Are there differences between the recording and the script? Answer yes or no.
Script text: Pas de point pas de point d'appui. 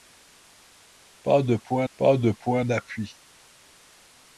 no